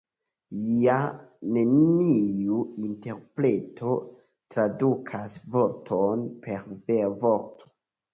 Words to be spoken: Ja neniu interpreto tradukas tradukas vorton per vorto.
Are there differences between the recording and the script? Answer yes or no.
yes